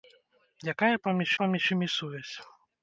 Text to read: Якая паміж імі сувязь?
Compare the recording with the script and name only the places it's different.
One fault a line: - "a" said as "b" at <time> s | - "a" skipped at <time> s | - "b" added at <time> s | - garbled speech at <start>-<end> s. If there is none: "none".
- "паміж" added at 1.4 s